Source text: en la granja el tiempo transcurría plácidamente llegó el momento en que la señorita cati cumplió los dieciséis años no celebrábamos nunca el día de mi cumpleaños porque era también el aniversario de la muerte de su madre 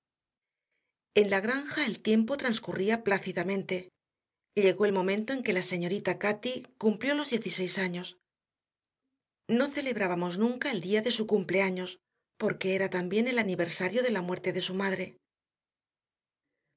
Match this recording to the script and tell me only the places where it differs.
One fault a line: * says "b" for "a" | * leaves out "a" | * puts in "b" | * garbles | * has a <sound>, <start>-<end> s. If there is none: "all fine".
* says "su" for "mi"